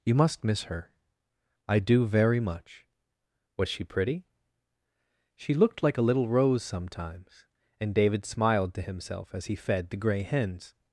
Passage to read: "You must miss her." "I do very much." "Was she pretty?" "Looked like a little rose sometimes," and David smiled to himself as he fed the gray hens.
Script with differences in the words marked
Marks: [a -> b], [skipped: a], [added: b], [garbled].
"You must miss her." "I do very much." "Was she pretty?" [added: She] "Looked like a little rose sometimes," and David smiled to himself as he fed the gray hens.